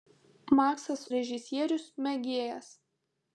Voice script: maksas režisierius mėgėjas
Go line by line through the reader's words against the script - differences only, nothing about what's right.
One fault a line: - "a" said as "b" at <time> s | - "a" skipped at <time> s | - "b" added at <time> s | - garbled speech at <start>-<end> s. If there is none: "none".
none